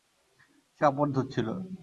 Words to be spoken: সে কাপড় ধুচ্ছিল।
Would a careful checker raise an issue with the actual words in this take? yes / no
no